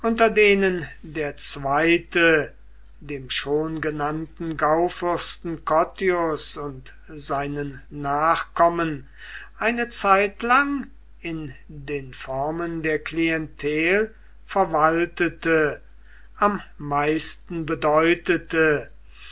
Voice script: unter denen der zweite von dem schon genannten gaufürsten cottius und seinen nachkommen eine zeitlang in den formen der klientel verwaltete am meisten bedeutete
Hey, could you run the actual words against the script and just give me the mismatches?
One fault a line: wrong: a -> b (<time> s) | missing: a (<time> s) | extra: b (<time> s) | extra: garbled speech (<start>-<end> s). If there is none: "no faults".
missing: von (2.5 s)